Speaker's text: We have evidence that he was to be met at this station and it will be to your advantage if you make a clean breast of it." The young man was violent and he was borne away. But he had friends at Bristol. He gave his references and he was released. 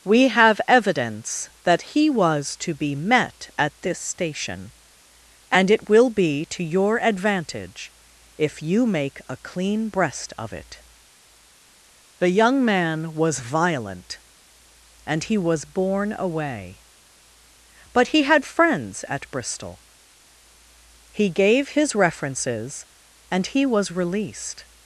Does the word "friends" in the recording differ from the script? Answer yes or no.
no